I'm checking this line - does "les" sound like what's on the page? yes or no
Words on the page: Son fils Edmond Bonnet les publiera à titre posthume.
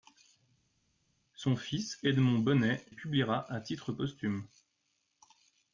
no